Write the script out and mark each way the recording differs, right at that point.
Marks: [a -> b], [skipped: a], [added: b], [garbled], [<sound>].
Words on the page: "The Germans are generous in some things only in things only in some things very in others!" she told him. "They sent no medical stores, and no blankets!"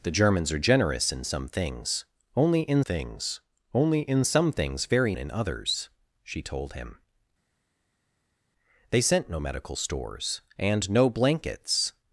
"The Germans are generous in some things only in things only in some things very in others!" she told him. "They sent no medical stores, and no blankets!"